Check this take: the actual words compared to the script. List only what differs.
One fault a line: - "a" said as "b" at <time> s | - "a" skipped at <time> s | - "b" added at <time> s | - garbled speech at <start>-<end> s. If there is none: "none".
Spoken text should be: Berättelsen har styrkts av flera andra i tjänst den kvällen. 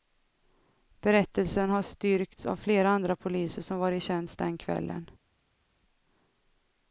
- "poliser som var" added at 3.1 s